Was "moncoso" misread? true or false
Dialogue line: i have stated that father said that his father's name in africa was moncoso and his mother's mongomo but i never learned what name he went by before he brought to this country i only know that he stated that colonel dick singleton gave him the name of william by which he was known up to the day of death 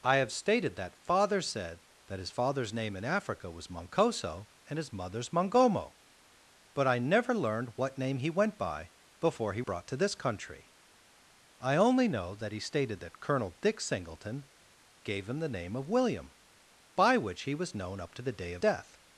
false